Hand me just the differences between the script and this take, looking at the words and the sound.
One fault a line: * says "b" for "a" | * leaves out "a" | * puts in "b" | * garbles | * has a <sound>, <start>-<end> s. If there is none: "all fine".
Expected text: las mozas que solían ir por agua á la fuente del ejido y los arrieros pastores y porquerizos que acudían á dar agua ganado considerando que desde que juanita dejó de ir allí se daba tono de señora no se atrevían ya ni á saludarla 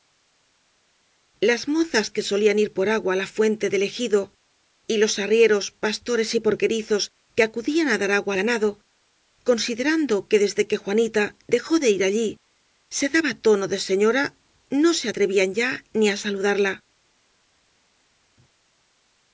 all fine